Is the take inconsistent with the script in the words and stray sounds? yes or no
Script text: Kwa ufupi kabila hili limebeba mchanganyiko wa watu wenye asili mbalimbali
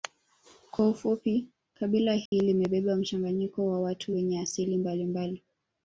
yes